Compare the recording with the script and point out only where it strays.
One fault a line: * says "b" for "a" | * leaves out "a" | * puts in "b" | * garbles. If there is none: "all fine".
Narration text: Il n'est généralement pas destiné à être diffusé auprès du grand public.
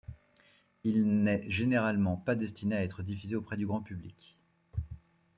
all fine